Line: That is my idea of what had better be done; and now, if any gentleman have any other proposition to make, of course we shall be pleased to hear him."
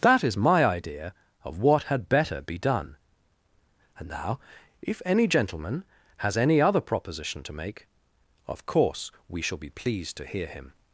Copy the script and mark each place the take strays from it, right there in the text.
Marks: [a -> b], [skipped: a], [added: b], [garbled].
That is my idea of what had better be done; and now, if any gentleman [have -> has] any other proposition to make, of course we shall be pleased to hear him."